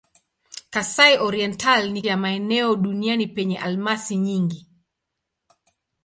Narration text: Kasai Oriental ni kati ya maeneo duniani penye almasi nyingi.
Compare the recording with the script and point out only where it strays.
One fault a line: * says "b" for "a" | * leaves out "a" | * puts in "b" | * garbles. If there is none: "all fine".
* leaves out "kati"